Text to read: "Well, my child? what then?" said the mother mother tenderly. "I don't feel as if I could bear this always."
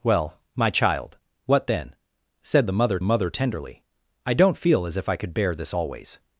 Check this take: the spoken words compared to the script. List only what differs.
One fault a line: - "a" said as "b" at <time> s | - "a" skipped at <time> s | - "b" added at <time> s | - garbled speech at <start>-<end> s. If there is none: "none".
none